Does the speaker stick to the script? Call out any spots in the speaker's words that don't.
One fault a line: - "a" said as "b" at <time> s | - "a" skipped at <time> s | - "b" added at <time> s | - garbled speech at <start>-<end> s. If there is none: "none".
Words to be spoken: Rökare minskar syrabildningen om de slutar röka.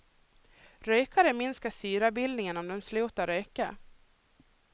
none